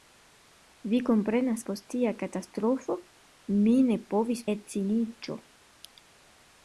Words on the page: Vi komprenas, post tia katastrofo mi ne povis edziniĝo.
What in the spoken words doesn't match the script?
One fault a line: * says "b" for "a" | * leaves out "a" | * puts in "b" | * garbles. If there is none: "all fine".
all fine